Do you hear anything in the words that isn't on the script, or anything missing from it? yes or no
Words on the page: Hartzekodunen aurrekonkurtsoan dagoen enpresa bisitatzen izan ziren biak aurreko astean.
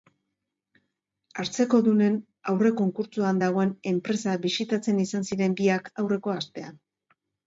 no